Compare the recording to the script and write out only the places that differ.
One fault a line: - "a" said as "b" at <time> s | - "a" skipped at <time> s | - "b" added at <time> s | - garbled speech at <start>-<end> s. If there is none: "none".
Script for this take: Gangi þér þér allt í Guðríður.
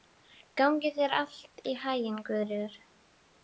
- "þér" skipped at 1.1 s
- "haginn" added at 1.9 s